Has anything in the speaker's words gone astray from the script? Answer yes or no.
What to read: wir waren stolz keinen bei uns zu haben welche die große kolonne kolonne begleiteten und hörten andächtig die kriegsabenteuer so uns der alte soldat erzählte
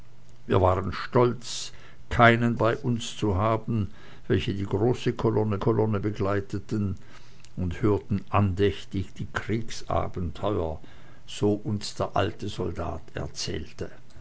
no